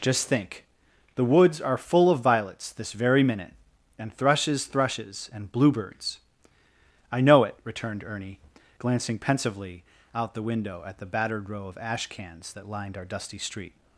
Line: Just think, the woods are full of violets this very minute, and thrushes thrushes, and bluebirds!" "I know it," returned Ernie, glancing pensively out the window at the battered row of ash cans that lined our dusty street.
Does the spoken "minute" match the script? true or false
true